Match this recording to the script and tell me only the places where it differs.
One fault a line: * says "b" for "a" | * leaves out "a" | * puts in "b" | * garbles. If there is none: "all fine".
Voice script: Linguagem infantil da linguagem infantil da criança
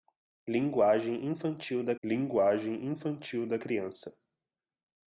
all fine